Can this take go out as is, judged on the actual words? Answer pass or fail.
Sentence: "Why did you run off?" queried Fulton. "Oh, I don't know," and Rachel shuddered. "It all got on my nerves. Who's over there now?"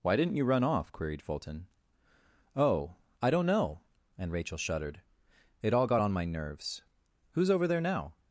fail